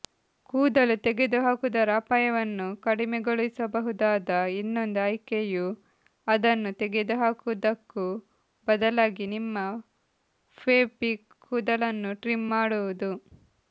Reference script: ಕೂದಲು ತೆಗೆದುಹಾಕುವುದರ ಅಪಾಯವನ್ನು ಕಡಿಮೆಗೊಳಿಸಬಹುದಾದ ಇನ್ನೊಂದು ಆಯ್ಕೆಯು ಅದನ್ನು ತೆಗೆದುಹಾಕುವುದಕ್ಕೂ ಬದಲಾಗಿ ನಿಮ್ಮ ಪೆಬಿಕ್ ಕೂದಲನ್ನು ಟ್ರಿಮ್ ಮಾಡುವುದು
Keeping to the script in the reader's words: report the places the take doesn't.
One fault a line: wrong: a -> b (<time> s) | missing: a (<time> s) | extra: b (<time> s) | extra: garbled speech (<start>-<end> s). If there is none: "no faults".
no faults